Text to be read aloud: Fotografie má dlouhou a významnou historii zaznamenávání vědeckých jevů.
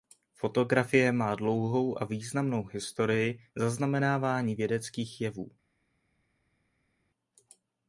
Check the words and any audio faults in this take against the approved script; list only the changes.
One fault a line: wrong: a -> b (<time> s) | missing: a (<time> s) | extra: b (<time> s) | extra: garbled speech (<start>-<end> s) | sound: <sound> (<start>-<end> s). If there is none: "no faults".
no faults